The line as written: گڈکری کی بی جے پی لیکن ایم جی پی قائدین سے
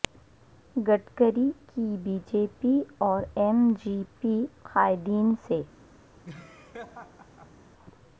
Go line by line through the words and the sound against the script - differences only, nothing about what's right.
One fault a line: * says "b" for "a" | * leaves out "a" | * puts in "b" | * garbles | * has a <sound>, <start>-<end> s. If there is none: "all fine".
* says "اور" for "لیکن"
* has a laugh, 6.2-7.6 s